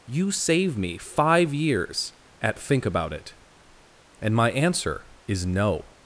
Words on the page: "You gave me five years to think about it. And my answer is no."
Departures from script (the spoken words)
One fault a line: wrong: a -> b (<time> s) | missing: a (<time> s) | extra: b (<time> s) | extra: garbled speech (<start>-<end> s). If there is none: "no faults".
wrong: gave -> save (0.3 s)
wrong: to -> at (2.4 s)